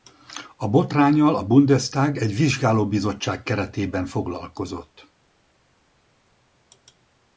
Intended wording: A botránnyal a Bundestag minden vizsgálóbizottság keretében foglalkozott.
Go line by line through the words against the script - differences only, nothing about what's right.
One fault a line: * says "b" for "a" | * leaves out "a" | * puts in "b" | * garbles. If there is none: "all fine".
* says "egy" for "minden"